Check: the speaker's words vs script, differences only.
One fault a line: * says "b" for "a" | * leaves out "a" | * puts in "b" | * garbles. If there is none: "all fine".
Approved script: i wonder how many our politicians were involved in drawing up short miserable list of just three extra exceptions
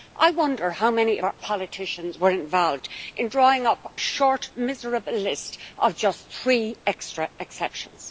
all fine